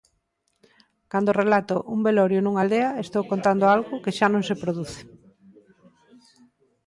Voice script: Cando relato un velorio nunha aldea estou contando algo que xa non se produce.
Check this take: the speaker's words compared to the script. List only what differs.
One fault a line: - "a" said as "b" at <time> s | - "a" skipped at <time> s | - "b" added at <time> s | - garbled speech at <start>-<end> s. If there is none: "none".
none